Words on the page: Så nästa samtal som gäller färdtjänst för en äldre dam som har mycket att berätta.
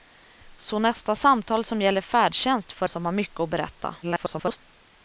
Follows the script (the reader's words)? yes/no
no